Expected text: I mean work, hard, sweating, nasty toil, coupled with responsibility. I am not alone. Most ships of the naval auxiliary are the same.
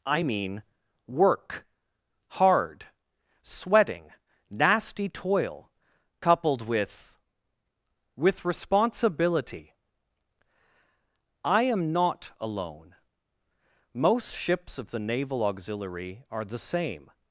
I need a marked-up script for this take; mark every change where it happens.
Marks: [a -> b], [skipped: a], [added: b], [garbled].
I mean work, hard, sweating, nasty toil, coupled with [added: with] responsibility. I am not alone. Most ships of the naval auxiliary are the same.